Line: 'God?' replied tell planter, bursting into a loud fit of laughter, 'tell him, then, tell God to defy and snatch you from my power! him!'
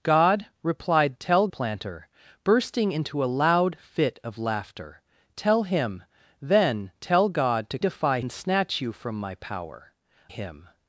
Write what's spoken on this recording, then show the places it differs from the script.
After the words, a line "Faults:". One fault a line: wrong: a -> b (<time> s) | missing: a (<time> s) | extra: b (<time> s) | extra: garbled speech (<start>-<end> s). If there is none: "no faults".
'God?' replied tell planter, bursting into a loud fit of laughter, 'tell him, then, tell God to defy and snatch you from my power! him!'
Faults:
no faults